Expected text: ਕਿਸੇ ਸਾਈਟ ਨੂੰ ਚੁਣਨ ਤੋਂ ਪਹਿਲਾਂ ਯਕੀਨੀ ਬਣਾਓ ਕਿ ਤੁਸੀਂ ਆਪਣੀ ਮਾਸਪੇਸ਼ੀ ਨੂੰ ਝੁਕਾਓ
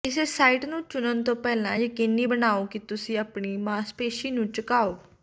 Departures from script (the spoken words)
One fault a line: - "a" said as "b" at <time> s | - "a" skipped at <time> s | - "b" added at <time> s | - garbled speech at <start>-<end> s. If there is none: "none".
none